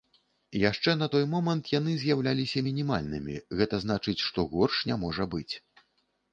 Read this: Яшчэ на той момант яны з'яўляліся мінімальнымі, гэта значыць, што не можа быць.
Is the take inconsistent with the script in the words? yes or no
yes